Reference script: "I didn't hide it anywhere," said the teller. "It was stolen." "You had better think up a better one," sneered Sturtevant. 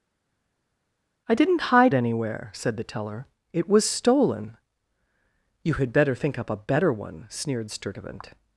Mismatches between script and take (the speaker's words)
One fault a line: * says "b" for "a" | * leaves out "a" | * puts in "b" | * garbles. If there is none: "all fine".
* leaves out "it"